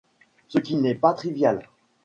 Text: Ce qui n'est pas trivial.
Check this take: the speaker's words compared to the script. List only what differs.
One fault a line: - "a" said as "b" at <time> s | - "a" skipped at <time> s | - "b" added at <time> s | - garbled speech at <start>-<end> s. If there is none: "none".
none